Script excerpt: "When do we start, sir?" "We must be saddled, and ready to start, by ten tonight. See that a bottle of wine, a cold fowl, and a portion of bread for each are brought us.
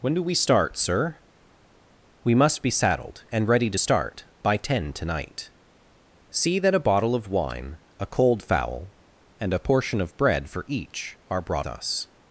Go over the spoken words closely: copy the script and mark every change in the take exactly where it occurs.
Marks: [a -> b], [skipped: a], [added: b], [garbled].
"When do we start, sir?" "We must be saddled, and ready to start, by ten tonight. See that a bottle of wine, a cold fowl, and a portion of bread for each are brought us.